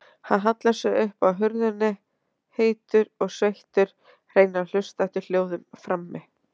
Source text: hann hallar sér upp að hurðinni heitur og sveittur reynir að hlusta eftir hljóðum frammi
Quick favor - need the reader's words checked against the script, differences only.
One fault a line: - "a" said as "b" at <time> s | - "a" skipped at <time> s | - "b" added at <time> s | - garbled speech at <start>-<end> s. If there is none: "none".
none